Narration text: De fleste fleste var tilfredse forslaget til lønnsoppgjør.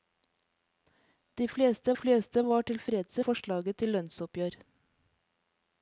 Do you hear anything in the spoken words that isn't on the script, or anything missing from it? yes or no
no